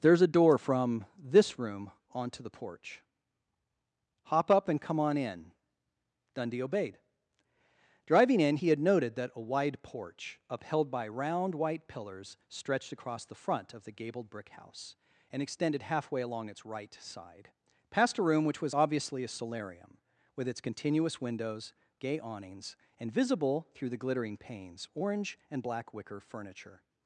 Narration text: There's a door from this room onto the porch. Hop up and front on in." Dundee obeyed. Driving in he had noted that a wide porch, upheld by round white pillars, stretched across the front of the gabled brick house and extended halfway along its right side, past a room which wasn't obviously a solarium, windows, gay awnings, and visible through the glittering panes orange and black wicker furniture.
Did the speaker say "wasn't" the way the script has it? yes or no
no